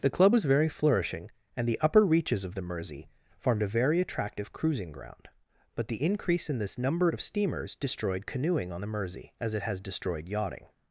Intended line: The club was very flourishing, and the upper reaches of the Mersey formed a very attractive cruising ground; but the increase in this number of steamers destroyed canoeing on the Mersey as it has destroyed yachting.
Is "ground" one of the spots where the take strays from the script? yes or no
no